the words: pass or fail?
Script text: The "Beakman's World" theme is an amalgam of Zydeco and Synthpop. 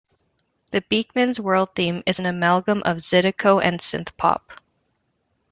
pass